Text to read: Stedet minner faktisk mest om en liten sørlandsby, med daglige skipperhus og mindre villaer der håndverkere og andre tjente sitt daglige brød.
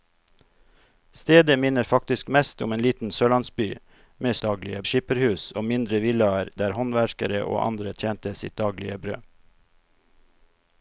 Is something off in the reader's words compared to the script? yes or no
no